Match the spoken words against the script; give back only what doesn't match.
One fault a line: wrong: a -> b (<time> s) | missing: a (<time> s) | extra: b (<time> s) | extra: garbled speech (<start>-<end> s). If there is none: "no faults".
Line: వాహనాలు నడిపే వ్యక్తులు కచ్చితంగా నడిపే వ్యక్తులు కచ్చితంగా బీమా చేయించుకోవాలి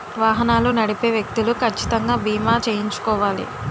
missing: నడిపే వ్యక్తులు కచ్చితంగా (2.2 s)